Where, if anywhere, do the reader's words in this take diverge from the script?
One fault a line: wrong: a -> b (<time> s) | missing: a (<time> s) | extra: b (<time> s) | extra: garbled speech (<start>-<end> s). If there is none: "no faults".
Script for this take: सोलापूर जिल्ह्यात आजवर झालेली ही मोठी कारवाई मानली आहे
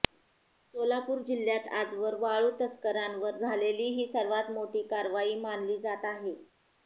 extra: वाळू तस्करांवर (2.2 s)
extra: सर्वात (4.1 s)
extra: जात (5.8 s)